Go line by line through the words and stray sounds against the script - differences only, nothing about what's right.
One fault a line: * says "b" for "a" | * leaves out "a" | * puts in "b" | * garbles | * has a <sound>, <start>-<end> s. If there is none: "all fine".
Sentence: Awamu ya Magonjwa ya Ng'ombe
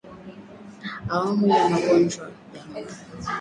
all fine